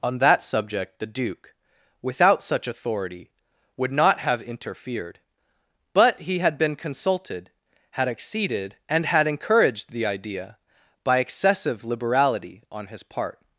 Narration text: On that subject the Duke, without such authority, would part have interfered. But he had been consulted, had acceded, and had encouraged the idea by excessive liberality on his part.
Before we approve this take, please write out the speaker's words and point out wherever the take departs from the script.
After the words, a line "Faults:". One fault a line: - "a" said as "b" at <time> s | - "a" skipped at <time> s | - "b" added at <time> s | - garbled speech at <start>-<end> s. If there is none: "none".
On that subject the Duke, without such authority, would not have interfered. But he had been consulted, had acceded, and had encouraged the idea by excessive liberality on his part.
Faults:
- "part" said as "not" at 3.9 s